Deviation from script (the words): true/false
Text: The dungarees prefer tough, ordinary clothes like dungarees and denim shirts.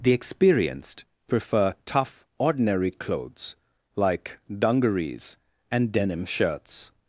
true